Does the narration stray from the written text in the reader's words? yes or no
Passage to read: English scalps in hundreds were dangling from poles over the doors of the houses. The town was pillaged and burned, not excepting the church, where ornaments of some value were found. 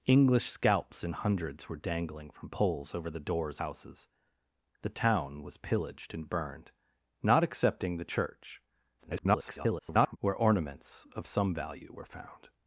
yes